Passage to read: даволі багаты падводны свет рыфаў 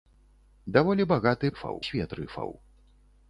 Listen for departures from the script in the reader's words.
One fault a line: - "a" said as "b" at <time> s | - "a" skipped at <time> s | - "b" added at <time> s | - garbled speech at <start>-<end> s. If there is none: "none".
- "падводны" said as "рыфаў" at 1.5 s